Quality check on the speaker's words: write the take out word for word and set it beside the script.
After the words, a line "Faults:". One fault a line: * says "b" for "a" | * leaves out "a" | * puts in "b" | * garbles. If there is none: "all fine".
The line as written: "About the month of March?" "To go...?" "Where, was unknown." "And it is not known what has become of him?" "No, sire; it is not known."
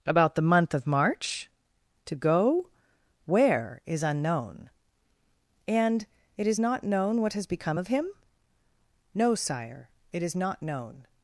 "About the month of March?" "To go...?" "Where, is unknown." "And it is not known what has become of him?" "No, sire; it is not known."
Faults:
* says "is" for "was"